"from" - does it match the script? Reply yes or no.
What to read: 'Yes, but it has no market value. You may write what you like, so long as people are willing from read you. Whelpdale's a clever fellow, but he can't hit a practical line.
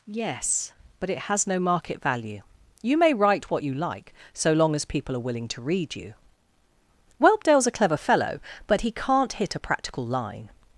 no